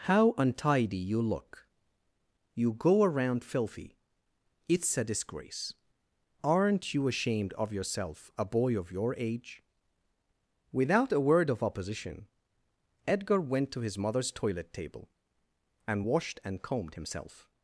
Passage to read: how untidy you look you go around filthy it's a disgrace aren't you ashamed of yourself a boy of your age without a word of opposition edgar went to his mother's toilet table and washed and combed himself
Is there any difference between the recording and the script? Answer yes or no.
no